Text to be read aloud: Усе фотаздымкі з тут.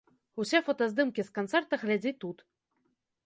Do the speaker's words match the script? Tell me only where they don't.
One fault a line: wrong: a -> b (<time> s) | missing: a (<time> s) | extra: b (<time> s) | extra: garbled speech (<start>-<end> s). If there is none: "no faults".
extra: канцэрта глядзі (1.4 s)